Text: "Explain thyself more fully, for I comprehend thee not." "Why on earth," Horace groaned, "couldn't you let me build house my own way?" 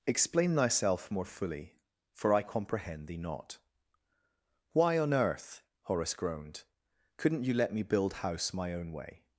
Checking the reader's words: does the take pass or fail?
pass